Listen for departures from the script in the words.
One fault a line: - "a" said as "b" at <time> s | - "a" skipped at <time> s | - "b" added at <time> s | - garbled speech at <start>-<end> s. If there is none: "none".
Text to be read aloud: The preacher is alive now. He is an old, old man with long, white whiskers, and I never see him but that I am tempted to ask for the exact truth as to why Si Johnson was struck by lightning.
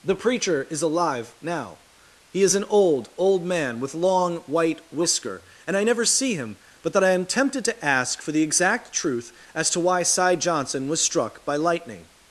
- "whiskers" said as "whisker" at 4.9 s